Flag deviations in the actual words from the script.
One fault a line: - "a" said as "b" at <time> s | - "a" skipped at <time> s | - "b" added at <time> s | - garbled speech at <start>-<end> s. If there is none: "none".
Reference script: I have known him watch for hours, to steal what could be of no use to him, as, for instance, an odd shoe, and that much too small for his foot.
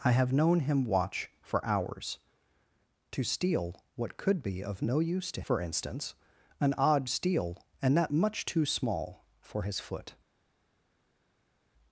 - "him as" skipped at 5.4 s
- "shoe" said as "steal" at 7.0 s